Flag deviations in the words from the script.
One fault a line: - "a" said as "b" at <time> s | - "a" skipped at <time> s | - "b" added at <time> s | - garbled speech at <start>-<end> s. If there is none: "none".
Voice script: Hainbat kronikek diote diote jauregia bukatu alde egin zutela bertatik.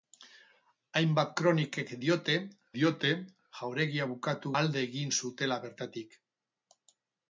none